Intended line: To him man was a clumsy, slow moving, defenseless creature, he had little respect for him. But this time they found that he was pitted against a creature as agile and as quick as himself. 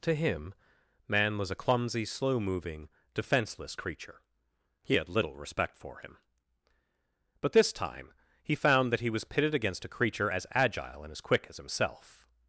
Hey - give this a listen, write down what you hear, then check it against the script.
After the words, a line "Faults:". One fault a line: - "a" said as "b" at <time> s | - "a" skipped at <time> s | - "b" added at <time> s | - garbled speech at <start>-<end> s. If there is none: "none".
To him man was a clumsy, slow moving, defenseless creature, he had little respect for him. But this time he found that he was pitted against a creature as agile and as quick as himself.
Faults:
- "they" said as "he" at 8.4 s